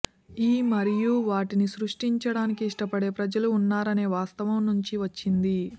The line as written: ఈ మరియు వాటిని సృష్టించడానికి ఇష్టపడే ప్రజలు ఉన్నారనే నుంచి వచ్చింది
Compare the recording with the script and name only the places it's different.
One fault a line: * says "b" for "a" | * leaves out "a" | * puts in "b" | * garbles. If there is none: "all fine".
* puts in "వాస్తవం"